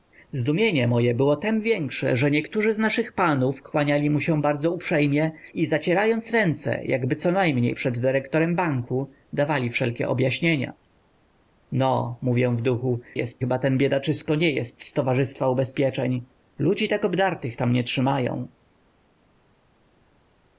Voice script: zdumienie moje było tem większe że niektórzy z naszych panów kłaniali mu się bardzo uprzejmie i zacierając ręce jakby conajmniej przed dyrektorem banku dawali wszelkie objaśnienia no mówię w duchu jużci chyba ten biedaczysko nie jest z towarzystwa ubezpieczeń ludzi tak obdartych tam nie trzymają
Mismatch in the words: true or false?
true